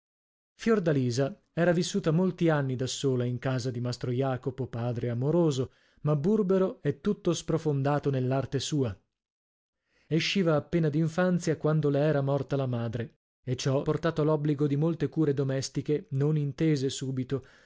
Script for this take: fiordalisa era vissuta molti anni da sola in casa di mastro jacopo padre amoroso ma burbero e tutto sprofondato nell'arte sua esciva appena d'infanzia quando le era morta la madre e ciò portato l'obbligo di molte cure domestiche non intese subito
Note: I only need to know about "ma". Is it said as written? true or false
true